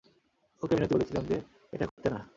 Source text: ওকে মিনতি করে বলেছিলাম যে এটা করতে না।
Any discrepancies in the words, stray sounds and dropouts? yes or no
yes